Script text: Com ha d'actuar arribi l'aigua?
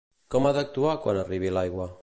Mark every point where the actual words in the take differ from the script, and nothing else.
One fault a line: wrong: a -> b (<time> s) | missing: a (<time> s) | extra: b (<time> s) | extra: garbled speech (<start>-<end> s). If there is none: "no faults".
extra: quan (1.1 s)